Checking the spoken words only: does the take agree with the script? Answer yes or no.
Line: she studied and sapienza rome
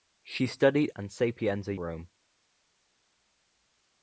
yes